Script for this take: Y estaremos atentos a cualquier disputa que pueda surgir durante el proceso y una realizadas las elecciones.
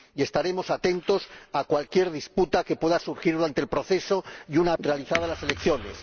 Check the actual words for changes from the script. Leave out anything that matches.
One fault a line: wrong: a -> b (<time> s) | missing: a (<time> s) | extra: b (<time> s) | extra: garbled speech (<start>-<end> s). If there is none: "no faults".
no faults